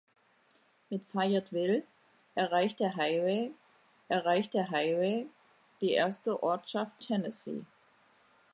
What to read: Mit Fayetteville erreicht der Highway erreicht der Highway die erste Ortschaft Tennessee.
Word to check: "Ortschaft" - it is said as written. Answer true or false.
true